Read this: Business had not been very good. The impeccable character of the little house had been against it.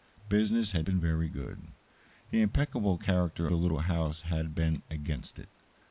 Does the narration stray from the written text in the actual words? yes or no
yes